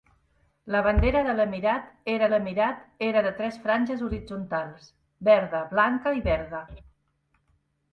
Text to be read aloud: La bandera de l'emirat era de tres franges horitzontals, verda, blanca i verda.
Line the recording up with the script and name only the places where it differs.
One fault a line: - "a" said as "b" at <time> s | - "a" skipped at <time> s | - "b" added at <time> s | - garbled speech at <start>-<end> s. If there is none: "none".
- "l'emirat era" added at 2.3 s